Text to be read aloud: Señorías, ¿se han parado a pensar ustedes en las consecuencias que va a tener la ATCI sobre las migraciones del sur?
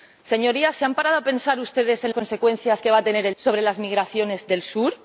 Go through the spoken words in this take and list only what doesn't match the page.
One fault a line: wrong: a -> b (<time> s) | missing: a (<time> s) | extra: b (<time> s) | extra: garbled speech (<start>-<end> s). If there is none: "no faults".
missing: las (2.1 s)
missing: ATCI (3.3 s)